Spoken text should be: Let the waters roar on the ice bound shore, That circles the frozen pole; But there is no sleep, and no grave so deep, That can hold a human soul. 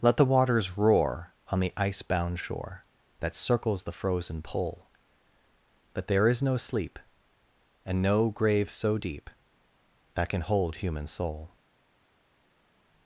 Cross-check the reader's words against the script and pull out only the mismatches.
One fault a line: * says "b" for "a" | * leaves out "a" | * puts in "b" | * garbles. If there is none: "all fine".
* leaves out "a"